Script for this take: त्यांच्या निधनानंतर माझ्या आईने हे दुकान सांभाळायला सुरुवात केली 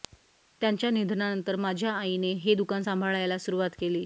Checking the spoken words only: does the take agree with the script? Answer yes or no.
yes